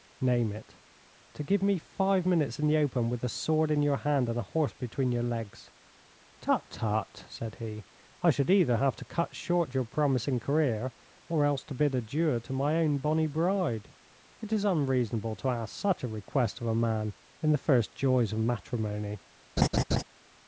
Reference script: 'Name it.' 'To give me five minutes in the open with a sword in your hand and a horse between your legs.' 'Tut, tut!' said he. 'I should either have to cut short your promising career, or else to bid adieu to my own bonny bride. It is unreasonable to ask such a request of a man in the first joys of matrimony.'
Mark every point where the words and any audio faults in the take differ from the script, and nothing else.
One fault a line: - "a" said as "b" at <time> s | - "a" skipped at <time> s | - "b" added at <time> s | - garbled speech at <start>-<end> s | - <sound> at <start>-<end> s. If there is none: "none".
- laugh at 19.6-20.0 s